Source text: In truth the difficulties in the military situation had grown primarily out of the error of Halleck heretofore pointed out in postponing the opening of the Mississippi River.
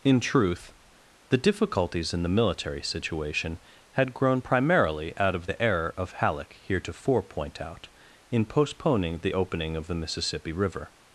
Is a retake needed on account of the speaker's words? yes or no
yes